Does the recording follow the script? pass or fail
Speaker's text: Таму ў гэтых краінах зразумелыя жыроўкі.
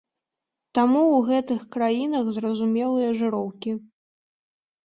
pass